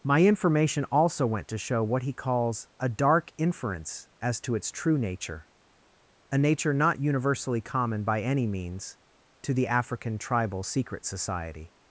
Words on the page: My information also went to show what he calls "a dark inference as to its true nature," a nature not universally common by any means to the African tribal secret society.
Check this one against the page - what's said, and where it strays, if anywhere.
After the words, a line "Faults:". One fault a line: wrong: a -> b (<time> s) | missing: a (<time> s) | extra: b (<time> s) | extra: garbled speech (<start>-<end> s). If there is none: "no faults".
My information also went to show what he calls "a dark inference as to its true nature," a nature not universally common by any means to the African tribal secret society.
Faults:
no faults